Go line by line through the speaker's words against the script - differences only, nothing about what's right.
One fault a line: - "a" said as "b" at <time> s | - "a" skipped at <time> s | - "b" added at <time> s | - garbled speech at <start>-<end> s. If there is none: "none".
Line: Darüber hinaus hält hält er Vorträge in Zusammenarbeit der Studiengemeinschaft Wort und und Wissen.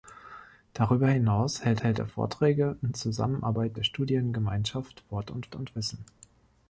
none